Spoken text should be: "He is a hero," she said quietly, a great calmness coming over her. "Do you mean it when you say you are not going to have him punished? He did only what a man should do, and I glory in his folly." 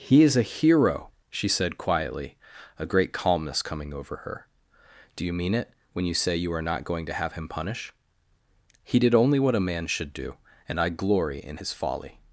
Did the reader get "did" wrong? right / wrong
right